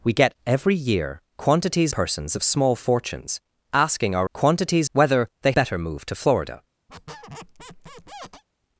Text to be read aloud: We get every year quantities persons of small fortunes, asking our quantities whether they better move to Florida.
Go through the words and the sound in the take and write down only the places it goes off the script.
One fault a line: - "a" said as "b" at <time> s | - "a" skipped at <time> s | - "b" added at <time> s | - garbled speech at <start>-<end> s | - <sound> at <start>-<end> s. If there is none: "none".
- squeak at 6.9-8.4 s